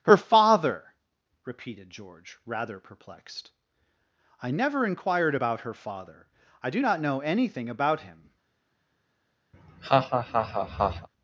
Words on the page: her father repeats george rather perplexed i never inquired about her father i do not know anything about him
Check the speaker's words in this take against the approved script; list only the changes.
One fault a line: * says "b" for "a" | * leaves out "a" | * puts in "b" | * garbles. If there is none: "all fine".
* says "repeated" for "repeats"